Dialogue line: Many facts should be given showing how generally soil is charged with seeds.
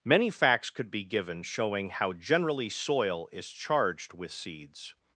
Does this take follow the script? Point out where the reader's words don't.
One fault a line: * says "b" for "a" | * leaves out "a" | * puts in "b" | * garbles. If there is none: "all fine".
* says "could" for "should"